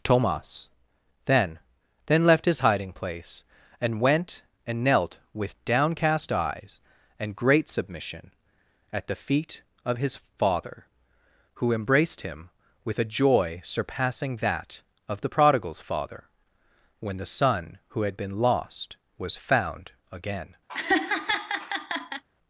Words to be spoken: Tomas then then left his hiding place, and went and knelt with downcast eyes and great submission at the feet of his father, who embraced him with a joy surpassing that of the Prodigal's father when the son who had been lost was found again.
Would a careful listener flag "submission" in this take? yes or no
no